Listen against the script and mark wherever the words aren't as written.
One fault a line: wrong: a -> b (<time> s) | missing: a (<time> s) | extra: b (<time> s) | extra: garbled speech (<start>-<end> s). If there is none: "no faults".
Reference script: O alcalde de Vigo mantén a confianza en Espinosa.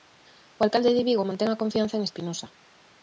no faults